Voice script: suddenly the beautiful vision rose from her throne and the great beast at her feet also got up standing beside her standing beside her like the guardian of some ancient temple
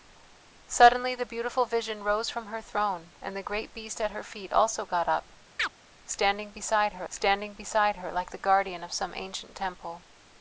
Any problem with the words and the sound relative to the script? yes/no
yes